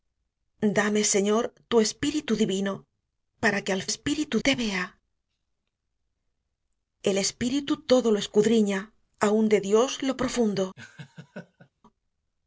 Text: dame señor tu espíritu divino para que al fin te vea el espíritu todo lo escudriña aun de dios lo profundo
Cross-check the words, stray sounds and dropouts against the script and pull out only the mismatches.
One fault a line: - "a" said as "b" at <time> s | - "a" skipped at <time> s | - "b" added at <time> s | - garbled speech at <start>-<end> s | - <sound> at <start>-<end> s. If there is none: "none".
- "fin" said as "espíritu" at 3.9 s
- laugh at 10.8-11.7 s